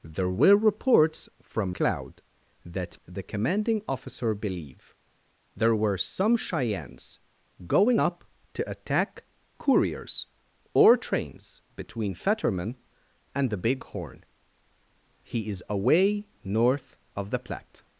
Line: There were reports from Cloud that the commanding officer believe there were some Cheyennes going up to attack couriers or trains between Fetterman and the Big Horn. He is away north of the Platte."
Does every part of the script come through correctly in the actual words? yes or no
yes